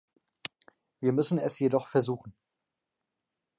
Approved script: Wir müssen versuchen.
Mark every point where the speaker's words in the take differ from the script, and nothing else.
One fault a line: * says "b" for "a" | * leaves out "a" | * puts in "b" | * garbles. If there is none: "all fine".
* puts in "es jedoch"